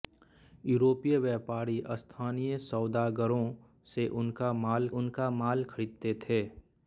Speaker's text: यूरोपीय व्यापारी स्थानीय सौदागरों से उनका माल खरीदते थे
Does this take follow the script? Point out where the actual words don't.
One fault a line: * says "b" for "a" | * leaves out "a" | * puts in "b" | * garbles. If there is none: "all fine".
* puts in "उनका माल"